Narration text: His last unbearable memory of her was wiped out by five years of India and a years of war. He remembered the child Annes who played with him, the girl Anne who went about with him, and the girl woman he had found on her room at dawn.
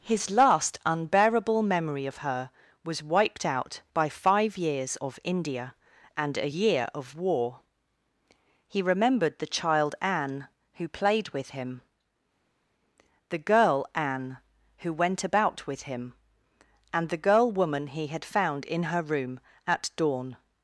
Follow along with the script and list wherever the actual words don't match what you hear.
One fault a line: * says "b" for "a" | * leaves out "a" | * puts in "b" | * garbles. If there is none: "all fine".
* says "year" for "years"
* says "Anne" for "Annes"
* says "in" for "on"